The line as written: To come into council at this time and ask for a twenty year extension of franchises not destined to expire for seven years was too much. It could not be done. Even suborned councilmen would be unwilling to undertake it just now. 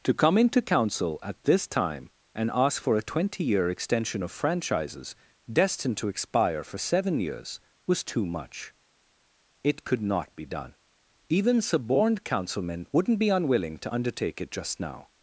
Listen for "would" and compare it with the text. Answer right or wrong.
wrong